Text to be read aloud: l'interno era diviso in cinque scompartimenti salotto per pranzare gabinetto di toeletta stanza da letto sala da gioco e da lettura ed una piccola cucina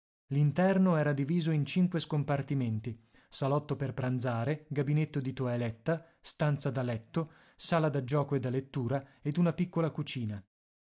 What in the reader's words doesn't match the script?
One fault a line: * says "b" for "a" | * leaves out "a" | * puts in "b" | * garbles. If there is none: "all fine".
all fine